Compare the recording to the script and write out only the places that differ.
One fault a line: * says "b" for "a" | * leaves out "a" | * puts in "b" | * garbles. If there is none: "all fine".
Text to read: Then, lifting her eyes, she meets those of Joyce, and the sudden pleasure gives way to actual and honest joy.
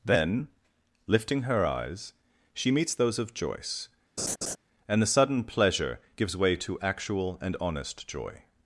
all fine